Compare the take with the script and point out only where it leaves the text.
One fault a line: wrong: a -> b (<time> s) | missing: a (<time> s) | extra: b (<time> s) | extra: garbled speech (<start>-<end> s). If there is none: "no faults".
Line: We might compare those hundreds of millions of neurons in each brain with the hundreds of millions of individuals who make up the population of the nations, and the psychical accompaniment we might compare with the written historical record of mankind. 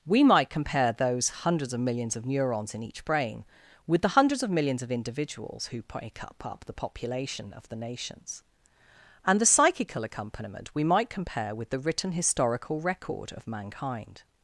extra: up (6.5 s)